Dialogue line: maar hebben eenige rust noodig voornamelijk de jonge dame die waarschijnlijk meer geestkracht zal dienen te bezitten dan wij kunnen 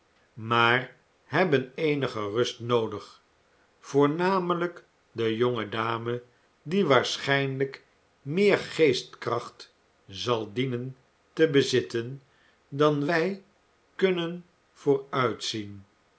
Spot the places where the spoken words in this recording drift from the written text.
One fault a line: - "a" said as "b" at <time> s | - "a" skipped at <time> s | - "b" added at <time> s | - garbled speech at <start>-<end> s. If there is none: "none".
none